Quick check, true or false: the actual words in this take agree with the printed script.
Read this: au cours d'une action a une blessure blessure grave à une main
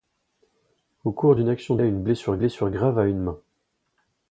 true